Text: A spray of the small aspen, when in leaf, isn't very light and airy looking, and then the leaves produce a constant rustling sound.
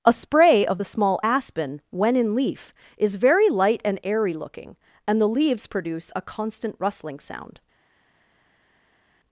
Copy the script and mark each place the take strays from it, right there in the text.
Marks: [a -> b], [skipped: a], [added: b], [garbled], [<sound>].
A spray of the small aspen, when in leaf, [isn't -> is] very light and airy looking, and [skipped: then] the leaves produce a constant rustling sound.